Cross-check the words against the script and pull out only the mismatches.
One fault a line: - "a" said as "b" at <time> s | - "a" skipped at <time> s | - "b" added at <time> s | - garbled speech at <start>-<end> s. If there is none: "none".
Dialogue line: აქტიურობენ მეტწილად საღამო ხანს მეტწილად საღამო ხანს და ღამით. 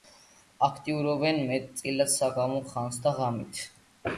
- "მეტწილად საღამო ხანს" skipped at 3.0 s